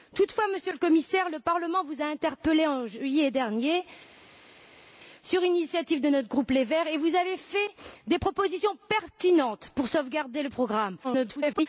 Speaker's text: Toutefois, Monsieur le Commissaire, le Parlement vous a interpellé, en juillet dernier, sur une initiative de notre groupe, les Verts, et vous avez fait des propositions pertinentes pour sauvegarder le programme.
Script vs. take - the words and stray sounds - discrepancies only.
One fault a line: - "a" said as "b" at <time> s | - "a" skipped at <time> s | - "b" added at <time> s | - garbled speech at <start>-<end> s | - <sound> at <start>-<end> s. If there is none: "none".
- garbled speech at 11.0-11.7 s